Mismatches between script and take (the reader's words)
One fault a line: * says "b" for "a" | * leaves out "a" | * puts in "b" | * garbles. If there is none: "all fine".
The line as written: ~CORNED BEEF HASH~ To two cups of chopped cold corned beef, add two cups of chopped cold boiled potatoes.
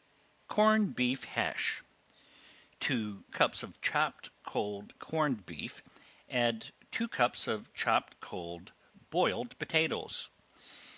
* leaves out "two"